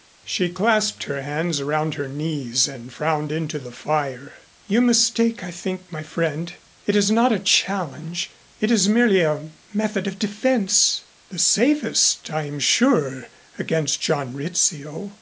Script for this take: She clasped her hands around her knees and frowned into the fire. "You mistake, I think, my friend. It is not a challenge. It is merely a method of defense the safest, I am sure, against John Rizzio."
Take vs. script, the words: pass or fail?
pass